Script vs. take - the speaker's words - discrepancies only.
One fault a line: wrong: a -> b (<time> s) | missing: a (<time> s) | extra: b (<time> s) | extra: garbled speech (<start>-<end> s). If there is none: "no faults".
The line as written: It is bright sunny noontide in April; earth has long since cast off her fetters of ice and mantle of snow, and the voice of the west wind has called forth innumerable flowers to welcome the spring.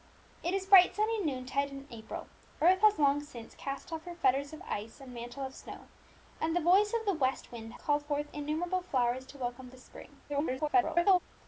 missing: has (7.7 s)
extra: garbled speech (10.3-11.2 s)